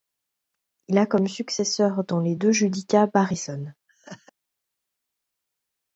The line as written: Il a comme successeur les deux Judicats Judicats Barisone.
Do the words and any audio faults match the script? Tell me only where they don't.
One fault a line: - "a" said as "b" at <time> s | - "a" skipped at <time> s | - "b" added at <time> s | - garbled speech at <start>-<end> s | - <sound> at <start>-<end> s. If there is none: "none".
- "dans" added at 2.0 s
- "Judicats" skipped at 3.1 s
- laugh at 3.9-4.3 s